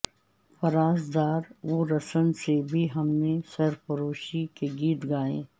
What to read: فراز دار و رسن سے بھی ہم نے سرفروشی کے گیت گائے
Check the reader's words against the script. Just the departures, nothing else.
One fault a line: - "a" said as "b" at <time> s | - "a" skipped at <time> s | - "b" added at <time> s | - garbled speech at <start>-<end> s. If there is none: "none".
none